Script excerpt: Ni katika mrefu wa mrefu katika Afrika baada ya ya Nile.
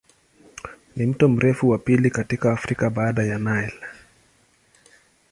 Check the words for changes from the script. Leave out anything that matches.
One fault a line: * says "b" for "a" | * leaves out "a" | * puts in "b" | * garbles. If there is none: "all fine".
* says "mto" for "katika"
* says "pili" for "mrefu"
* leaves out "ya"